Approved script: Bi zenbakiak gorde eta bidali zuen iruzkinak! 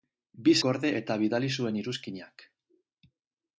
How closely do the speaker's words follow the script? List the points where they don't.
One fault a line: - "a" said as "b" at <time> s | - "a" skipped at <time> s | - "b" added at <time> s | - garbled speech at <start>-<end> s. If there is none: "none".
- "zenbakiak" skipped at 0.5 s